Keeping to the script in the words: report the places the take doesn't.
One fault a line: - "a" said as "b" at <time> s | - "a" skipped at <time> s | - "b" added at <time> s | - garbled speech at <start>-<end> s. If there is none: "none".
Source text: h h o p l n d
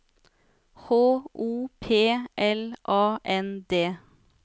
- "h" skipped at 0.9 s
- "a" added at 2.9 s